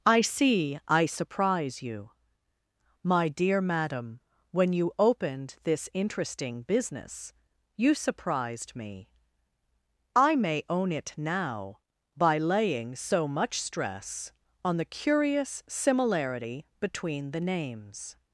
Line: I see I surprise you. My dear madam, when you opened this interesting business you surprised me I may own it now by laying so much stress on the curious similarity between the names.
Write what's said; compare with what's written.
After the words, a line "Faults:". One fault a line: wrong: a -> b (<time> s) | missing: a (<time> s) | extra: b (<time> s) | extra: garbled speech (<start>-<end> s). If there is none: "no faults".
I see I surprise you. My dear madam, when you opened this interesting business you surprised me I may own it now by laying so much stress on the curious similarity between the names.
Faults:
no faults